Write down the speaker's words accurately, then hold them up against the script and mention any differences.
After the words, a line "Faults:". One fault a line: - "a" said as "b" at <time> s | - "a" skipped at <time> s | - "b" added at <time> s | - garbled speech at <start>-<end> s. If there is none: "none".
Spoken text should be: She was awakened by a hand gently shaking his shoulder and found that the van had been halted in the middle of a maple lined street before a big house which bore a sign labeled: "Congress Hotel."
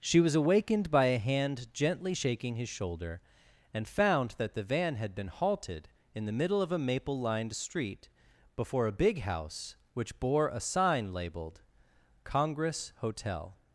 She was awakened by a hand gently shaking his shoulder and found that the van had been halted in the middle of a maple lined street before a big house which bore a sign labeled: "Congress Hotel."
Faults:
none